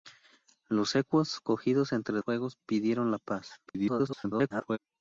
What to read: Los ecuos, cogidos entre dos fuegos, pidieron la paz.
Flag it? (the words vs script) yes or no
yes